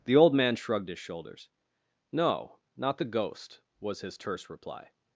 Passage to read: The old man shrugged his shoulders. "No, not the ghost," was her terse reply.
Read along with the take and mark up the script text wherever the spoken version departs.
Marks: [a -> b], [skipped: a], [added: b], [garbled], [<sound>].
The old man shrugged his shoulders. "No, not the ghost," was [her -> his] terse reply.